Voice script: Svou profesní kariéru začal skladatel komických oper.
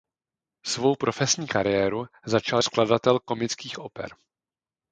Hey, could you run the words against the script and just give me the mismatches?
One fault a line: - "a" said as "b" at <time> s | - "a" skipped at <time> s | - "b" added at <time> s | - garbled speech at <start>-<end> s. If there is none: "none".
none